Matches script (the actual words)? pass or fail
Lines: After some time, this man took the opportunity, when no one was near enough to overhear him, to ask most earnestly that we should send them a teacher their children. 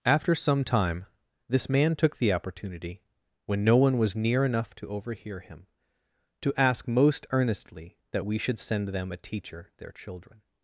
pass